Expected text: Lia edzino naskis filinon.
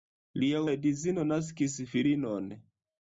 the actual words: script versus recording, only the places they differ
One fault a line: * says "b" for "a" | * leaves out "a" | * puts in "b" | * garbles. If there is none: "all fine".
all fine